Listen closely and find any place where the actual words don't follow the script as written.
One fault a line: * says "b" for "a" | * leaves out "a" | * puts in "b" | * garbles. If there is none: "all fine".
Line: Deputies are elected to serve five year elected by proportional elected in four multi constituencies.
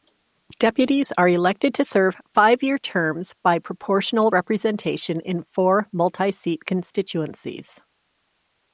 * says "terms" for "elected"
* says "representation" for "elected"
* puts in "seat"